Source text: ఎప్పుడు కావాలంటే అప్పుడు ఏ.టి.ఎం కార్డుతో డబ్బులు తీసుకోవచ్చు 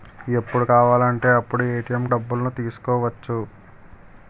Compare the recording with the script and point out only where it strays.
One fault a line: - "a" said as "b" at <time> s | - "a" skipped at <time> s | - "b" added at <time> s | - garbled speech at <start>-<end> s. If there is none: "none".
- "కార్డుతో" skipped at 2.1 s